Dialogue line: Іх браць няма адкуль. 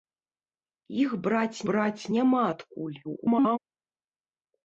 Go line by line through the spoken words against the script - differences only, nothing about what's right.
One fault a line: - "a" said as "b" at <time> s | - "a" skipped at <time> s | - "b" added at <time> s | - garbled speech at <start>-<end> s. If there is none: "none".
- "браць" added at 1.7 s
- garbled speech at 3.0-3.6 s